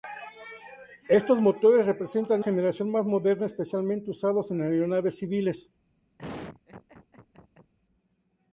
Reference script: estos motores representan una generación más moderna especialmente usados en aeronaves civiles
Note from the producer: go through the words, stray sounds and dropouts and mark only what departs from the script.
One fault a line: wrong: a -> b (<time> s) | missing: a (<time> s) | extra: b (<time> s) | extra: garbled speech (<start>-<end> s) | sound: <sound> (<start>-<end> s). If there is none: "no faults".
missing: una (2.4 s)
sound: laugh (6.2-7.7 s)